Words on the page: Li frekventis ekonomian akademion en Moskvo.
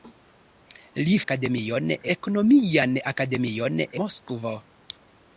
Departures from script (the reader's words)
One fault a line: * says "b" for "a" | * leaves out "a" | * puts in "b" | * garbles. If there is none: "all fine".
* says "akademion" for "frekventis"
* leaves out "en"